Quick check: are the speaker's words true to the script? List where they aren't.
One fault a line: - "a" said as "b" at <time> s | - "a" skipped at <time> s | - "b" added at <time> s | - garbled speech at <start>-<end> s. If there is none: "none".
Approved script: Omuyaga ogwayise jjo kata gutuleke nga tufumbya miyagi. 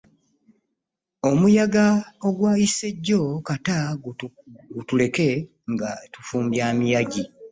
none